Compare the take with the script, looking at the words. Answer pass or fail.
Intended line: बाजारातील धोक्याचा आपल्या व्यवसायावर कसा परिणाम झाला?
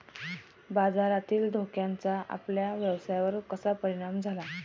pass